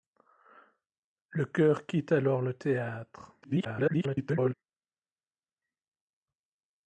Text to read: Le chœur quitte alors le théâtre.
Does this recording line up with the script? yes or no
no